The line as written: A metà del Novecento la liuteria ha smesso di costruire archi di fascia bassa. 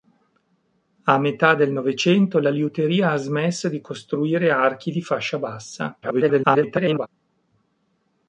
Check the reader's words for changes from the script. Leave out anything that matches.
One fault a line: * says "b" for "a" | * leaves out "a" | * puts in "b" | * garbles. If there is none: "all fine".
* garbles